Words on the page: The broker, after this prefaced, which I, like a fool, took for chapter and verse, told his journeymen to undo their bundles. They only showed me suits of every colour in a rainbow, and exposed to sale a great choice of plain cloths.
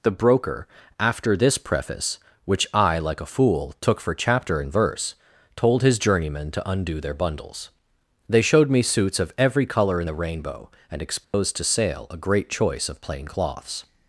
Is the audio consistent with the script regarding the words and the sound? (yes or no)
no